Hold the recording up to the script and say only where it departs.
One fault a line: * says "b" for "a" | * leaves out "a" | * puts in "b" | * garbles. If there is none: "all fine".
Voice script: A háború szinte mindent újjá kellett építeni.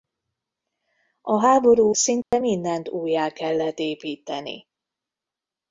all fine